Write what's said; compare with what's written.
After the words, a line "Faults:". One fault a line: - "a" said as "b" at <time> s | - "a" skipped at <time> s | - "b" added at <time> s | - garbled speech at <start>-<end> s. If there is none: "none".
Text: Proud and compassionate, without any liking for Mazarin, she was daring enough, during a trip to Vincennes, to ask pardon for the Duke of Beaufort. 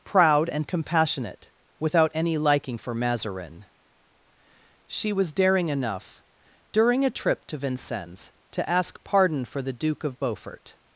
Proud and compassionate, without any liking for Mazarin, she was daring enough, during a trip to Vincennes, to ask pardon for the Duke of Beaufort.
Faults:
none